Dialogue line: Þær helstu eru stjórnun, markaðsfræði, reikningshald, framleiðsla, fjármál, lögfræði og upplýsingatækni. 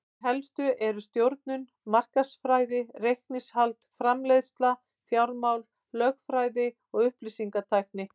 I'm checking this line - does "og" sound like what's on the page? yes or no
yes